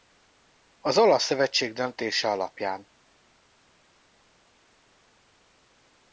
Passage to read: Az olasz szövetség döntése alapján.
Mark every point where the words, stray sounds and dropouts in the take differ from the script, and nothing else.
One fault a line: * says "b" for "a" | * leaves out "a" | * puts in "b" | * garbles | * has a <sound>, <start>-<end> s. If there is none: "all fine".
all fine